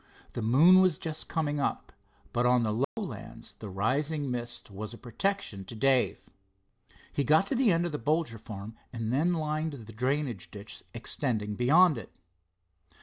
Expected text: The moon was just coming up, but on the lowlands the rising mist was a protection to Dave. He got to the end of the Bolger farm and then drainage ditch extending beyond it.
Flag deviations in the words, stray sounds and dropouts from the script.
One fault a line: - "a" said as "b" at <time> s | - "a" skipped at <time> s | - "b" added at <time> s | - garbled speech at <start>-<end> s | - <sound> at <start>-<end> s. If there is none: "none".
- dropout at 2.8-3.0 s
- "lined the" added at 9.3 s